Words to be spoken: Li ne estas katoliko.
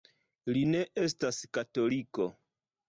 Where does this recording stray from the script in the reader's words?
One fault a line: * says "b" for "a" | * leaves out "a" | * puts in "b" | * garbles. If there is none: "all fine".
all fine